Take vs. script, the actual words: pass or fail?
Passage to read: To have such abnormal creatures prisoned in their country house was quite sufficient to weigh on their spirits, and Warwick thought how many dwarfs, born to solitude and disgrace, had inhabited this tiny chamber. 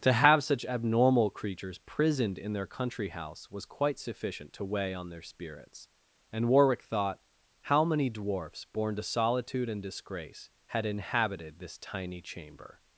pass